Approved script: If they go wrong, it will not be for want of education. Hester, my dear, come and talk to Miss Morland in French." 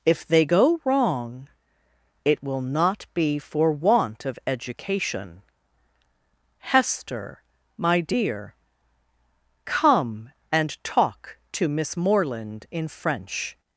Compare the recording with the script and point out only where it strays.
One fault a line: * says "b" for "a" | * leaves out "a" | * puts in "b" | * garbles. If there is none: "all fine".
all fine